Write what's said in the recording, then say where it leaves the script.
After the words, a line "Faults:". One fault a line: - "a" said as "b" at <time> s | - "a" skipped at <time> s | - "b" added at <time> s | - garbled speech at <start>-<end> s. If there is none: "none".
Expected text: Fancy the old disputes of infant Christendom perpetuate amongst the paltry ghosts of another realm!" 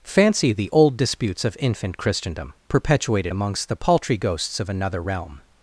Fancy the old disputes of infant Christendom perpetuated amongst the paltry ghosts of another realm!"
Faults:
- "perpetuate" said as "perpetuated" at 2.7 s